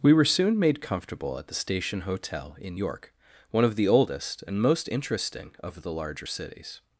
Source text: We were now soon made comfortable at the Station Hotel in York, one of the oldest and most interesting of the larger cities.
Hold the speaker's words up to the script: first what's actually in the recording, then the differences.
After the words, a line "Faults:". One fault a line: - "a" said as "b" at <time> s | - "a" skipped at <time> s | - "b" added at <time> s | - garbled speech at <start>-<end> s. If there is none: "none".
We were soon made comfortable at the Station Hotel in York, one of the oldest and most interesting of the larger cities.
Faults:
- "now" skipped at 0.2 s